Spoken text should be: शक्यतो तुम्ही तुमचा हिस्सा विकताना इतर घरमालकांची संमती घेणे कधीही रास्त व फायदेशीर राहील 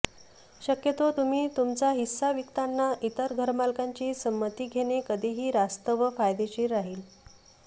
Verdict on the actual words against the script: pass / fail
pass